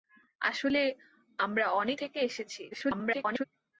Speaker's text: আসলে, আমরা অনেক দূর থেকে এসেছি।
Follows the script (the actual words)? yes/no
no